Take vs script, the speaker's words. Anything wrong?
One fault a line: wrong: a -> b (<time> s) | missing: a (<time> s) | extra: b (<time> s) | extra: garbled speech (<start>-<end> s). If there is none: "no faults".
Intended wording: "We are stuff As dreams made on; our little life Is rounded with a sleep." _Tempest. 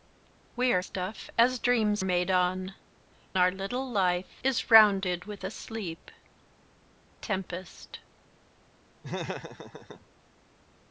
no faults